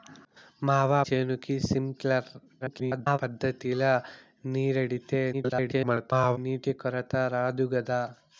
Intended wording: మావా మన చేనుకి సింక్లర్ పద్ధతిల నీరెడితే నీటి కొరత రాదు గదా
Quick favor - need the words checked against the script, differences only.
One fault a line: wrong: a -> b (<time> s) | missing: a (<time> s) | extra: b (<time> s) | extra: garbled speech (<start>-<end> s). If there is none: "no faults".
missing: మన (1.0 s)
extra: garbled speech (2.6-3.2 s)
extra: garbled speech (5.3-6.4 s)